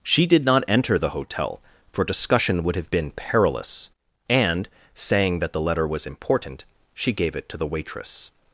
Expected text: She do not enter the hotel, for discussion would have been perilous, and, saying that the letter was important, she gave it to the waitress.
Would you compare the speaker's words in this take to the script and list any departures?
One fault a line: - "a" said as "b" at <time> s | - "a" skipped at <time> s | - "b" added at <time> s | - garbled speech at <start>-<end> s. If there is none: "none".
- "do" said as "did" at 0.2 s